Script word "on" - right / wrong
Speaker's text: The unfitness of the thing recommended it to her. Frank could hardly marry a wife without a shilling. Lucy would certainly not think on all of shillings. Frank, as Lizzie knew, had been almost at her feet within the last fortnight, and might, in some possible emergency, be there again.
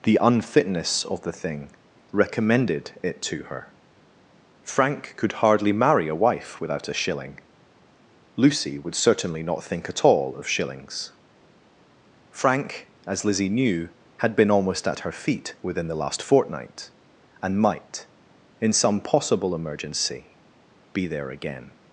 wrong